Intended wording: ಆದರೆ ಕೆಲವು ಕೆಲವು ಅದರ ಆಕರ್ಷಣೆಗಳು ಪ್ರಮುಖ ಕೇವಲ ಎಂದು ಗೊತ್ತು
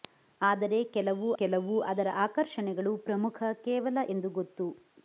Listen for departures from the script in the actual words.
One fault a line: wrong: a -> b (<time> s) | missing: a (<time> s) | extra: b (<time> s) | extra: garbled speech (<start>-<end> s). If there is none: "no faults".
no faults